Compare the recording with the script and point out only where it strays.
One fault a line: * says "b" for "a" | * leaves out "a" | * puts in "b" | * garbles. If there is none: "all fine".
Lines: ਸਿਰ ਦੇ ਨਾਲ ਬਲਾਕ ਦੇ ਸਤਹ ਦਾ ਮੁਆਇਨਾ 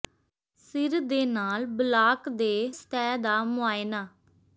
all fine